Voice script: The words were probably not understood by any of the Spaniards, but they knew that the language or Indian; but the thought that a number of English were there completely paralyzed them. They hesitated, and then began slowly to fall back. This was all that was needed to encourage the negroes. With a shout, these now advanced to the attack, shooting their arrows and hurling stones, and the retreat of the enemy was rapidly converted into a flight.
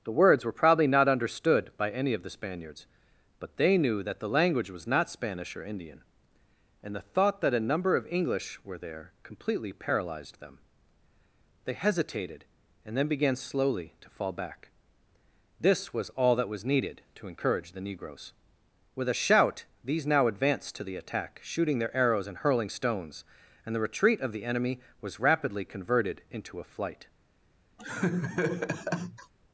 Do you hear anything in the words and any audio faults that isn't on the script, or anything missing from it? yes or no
yes